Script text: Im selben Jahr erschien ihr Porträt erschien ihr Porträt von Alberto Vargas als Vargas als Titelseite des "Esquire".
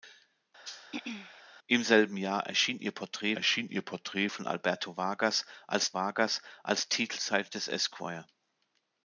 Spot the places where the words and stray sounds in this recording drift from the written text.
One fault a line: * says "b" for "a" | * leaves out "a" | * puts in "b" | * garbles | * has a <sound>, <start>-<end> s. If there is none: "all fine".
* has a throat clearing, 0.6-1.4 s